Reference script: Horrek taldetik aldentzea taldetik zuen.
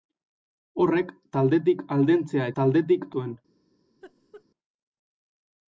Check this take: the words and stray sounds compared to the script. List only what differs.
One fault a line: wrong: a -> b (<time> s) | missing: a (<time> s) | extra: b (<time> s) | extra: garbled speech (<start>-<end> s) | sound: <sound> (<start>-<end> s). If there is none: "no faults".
sound: laugh (4.0-4.4 s)